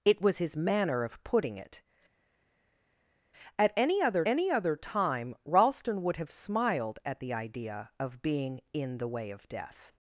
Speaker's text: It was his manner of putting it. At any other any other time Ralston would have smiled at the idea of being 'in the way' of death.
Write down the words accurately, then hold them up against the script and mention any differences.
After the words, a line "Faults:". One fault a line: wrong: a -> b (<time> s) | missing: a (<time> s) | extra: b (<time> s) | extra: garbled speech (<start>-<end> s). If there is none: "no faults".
It was his manner of putting it. At any other any other time Ralston would have smiled at the idea of being 'in the way' of death.
Faults:
no faults